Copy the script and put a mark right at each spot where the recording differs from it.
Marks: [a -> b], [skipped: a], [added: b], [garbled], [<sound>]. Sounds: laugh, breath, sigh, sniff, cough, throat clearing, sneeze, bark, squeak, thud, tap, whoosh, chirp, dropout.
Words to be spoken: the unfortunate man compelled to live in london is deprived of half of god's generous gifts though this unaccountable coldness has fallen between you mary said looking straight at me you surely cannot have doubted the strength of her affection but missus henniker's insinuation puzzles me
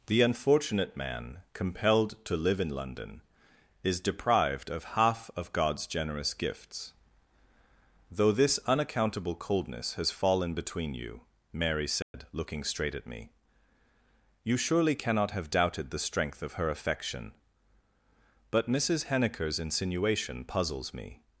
the unfortunate man compelled to live in london is deprived of half of god's generous gifts though this unaccountable coldness has fallen between you mary said [dropout] looking straight at me you surely cannot have doubted the strength of her affection but missus henniker's insinuation puzzles me